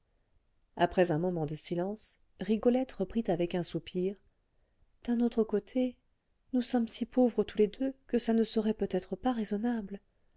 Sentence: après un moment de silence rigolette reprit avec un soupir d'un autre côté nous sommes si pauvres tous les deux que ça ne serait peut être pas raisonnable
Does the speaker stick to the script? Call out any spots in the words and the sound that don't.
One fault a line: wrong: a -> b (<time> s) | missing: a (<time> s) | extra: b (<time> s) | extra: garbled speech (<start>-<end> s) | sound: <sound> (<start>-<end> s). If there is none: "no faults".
no faults